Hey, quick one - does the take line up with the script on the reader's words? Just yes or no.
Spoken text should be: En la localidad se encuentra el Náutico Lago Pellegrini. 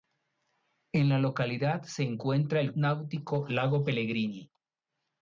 yes